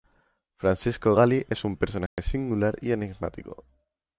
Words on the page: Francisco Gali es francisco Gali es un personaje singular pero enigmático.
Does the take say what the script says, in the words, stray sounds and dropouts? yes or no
no